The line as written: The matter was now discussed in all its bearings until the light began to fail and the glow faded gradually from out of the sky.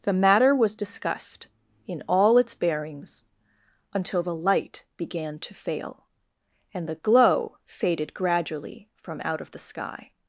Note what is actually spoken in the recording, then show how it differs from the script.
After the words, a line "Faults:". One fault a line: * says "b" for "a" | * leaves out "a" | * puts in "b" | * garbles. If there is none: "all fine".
The matter was discussed in all its bearings until the light began to fail and the glow faded gradually from out of the sky.
Faults:
* leaves out "now"